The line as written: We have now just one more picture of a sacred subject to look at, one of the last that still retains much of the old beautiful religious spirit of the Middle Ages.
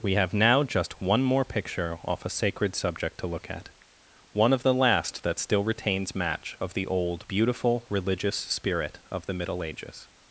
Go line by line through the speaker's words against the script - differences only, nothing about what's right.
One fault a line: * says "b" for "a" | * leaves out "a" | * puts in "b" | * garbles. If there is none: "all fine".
* says "off" for "of"
* says "match" for "much"